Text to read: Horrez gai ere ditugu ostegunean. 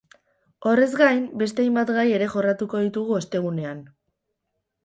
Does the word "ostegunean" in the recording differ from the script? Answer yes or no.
no